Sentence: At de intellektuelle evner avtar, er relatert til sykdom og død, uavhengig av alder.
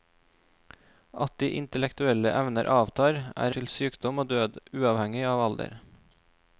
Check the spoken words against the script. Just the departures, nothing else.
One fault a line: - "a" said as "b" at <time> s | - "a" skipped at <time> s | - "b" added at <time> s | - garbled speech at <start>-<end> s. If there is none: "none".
- "relatert" skipped at 3.5 s